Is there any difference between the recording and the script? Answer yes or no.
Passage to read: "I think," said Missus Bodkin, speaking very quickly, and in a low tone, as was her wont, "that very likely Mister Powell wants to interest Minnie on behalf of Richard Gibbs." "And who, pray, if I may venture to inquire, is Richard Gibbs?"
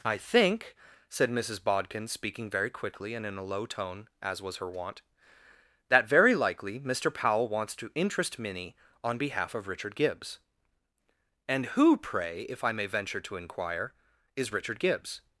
no